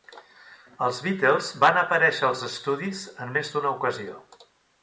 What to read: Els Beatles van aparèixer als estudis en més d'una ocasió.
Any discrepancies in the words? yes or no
no